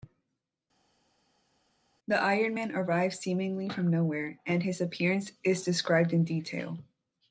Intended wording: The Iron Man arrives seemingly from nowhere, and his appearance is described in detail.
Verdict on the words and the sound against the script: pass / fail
pass